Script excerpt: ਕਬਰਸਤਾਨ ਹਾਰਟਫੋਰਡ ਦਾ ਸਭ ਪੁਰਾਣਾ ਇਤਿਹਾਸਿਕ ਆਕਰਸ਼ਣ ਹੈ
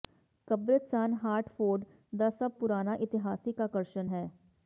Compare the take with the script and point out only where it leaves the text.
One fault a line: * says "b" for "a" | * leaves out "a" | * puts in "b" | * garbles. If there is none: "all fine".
all fine